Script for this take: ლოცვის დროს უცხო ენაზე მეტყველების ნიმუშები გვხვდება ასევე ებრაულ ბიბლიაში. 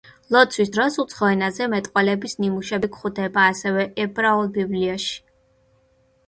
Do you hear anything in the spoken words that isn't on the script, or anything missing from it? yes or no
no